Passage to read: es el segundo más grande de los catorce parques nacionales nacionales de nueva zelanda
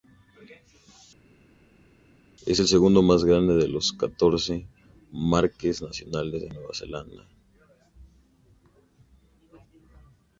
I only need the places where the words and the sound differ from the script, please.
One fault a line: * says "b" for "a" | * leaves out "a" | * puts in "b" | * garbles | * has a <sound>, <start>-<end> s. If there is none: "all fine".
* leaves out "nacionales"